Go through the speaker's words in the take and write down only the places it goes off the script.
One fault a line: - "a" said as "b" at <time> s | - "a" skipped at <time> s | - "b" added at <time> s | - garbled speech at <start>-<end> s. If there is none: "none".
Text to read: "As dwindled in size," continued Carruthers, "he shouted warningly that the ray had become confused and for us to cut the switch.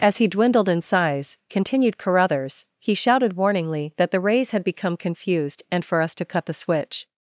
- "he" added at 0.2 s
- "ray" said as "rays" at 4.2 s